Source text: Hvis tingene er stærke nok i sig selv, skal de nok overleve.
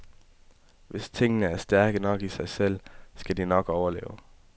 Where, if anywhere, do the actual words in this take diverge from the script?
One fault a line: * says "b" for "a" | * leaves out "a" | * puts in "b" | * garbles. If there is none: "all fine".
all fine